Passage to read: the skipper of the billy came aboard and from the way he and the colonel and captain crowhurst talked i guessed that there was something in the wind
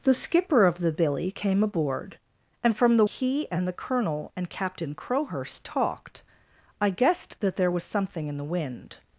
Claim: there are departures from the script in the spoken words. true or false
true